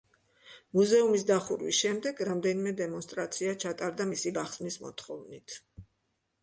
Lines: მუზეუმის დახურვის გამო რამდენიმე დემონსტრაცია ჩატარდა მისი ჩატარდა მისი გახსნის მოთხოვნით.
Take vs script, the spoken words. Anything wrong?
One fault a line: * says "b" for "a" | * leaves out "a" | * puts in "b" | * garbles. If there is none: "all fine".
* says "შემდეგ" for "გამო"
* leaves out "ჩატარდა მისი"